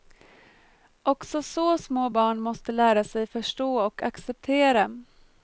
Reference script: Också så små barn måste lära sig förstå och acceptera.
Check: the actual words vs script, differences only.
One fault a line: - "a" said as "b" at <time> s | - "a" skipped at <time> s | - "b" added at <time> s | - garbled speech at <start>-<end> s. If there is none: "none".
none